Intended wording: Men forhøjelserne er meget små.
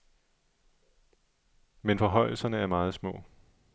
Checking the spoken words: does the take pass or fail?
pass